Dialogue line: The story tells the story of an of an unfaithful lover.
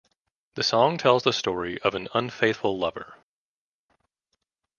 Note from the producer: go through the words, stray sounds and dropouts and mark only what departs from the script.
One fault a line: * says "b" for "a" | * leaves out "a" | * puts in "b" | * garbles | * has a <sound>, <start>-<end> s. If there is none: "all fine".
* says "song" for "story"
* leaves out "of an"